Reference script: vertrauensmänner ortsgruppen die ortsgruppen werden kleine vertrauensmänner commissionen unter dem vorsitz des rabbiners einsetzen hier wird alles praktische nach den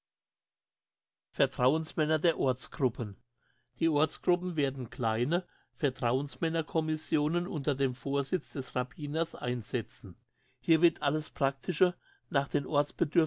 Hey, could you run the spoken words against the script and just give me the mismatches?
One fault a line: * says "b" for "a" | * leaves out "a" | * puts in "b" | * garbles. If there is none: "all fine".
* puts in "der"